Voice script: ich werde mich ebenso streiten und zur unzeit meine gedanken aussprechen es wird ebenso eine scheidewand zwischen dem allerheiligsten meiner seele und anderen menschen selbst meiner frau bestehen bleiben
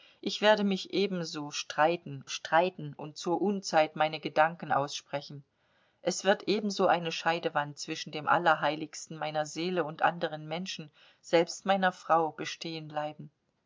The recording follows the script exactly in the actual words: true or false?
false